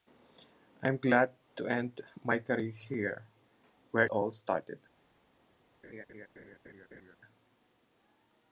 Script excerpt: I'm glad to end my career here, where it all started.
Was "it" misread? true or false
true